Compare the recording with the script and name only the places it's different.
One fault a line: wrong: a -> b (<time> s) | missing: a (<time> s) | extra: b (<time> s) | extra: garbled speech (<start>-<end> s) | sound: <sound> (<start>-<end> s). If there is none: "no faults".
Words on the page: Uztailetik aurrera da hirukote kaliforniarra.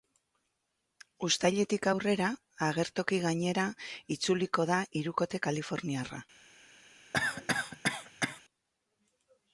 extra: agertoki gainera itzuliko (2.7 s)
sound: cough (7.1-8.4 s)